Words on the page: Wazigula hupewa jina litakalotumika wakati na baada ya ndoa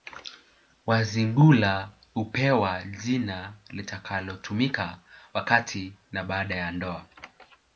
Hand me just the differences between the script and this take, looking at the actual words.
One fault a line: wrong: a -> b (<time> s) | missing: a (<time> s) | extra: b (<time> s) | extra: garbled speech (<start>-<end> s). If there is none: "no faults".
no faults